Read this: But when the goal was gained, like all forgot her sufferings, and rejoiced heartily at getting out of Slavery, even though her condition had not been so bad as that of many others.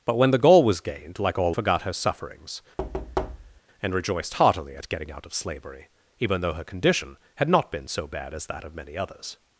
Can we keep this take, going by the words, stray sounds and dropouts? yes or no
no